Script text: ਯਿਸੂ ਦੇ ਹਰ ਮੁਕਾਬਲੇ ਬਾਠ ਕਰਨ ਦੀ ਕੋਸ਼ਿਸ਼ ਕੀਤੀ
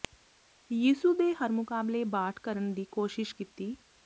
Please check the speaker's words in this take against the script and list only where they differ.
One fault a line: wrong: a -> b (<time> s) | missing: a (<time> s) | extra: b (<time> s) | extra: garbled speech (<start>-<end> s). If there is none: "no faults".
no faults